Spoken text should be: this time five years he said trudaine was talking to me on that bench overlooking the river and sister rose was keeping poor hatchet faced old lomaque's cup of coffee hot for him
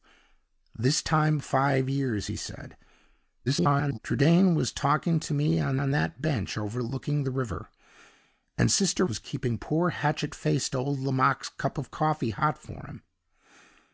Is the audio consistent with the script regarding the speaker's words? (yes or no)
no